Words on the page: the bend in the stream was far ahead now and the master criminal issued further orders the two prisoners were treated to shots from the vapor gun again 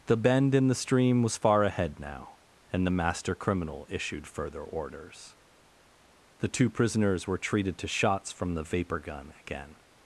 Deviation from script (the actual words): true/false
false